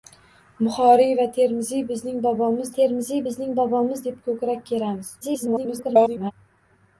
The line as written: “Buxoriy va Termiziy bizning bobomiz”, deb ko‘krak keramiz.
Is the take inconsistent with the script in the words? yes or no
yes